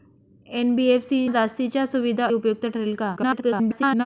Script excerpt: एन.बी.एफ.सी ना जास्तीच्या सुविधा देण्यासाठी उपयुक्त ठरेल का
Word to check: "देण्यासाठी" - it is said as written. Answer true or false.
false